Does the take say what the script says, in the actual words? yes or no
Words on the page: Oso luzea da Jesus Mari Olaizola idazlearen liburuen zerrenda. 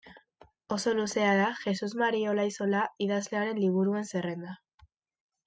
yes